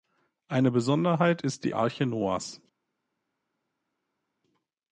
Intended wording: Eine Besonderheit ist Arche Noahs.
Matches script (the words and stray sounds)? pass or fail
fail